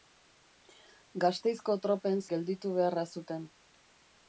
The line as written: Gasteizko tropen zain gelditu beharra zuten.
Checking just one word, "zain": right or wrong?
wrong